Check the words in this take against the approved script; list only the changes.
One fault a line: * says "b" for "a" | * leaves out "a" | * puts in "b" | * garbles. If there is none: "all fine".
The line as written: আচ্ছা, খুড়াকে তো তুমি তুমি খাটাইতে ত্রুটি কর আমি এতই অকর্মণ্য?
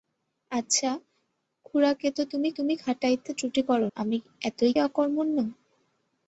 all fine